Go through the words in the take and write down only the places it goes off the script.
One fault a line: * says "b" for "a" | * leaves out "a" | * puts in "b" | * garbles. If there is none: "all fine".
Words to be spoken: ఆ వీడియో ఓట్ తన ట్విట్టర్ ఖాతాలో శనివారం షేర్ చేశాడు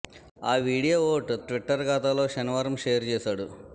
* leaves out "తన"